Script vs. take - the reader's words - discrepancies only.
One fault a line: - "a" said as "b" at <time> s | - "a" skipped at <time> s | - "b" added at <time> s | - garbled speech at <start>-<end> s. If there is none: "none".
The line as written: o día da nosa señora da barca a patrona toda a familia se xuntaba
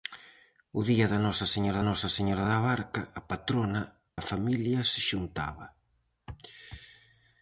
- "nosa señora" added at 1.9 s
- "toda" skipped at 3.8 s